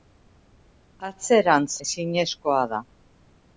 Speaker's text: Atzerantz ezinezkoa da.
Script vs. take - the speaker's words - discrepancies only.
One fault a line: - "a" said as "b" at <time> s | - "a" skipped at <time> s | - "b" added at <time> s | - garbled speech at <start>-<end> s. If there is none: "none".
none